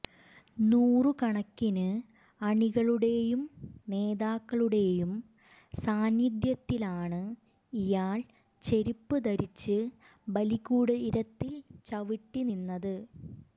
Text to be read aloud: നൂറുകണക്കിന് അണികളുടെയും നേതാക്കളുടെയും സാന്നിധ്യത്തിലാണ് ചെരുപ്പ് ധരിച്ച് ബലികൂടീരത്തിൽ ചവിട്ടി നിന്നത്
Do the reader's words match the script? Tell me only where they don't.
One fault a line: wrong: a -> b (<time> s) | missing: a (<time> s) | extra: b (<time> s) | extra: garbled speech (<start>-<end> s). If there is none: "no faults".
extra: ഇയാൾ (7.7 s)